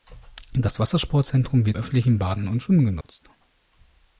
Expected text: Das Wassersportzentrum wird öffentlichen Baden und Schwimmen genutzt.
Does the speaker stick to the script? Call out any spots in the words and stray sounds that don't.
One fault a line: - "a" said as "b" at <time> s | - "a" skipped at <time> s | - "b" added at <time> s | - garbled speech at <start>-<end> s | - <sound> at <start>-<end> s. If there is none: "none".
- dropout at 3.0-3.0 s